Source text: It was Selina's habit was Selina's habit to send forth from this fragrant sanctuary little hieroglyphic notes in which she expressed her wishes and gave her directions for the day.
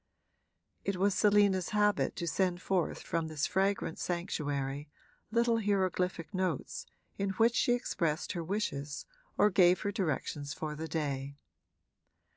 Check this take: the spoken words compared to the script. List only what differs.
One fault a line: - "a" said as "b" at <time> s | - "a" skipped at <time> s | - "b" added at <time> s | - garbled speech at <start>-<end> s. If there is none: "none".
- "was Selina's habit" skipped at 2.2 s
- "and" said as "or" at 9.4 s